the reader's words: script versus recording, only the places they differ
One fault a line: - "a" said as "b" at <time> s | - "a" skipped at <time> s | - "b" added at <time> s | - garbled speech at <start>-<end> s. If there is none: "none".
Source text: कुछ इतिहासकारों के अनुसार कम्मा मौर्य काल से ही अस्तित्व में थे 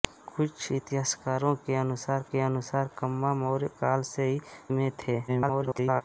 - "के अनुसार" added at 2.3 s
- "अस्तित्व" skipped at 4.4 s
- garbled speech at 5.3-6.0 s